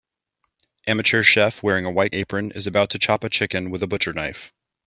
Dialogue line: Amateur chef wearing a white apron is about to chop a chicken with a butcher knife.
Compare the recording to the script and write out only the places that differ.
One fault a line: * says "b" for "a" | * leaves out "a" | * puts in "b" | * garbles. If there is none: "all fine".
all fine